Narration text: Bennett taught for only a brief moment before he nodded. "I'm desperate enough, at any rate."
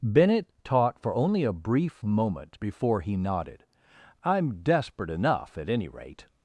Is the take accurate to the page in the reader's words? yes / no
yes